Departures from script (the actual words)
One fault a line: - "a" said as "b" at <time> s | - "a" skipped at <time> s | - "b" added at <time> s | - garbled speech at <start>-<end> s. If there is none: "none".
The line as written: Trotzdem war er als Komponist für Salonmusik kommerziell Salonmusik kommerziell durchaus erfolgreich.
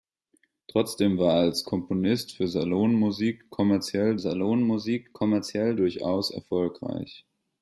none